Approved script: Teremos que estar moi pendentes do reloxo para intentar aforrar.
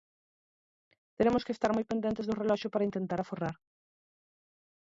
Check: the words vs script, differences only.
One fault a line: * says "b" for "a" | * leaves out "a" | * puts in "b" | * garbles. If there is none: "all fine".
all fine